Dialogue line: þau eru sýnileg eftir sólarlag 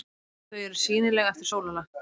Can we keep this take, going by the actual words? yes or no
yes